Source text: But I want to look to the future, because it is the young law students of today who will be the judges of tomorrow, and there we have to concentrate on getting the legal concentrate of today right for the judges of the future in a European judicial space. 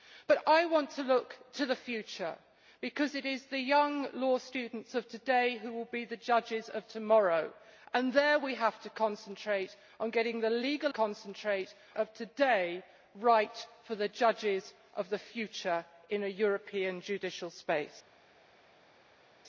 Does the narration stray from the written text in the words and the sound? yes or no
no